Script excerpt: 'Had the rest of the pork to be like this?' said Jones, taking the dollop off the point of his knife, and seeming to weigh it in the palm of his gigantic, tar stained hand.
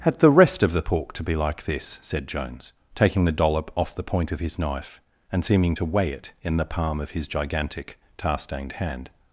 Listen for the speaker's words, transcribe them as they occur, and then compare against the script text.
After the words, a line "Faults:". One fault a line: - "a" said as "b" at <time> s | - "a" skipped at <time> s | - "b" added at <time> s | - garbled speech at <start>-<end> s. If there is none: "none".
'Had the rest of the pork to be like this?' said Jones, taking the dollop off the point of his knife, and seeming to weigh it in the palm of his gigantic, tar stained hand.
Faults:
none